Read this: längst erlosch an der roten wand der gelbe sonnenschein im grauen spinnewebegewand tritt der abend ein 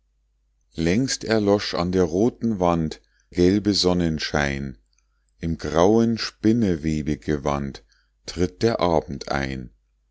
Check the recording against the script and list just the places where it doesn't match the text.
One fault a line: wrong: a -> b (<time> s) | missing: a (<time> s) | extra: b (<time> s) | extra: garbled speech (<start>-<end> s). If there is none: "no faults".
missing: der (3.0 s)